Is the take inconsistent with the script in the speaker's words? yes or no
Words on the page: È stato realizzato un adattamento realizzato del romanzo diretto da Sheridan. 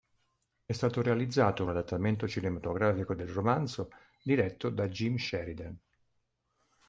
yes